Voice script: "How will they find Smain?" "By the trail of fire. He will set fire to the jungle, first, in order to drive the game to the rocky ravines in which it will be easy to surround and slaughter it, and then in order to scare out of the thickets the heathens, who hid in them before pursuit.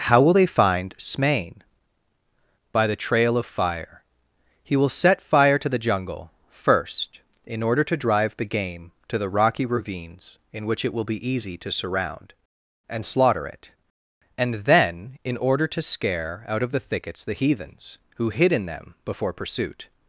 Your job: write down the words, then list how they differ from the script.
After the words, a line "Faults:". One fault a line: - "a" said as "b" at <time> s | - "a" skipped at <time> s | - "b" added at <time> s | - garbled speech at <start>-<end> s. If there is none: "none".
"How will they find Smain?" "By the trail of fire. He will set fire to the jungle, first, in order to drive the game to the rocky ravines in which it will be easy to surround and slaughter it, and then in order to scare out of the thickets the heathens, who hid in them before pursuit.
Faults:
none